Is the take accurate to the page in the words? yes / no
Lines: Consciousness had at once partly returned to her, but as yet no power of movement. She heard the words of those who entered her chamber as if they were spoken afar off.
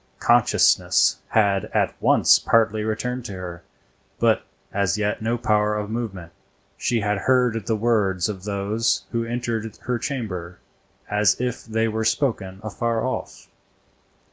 no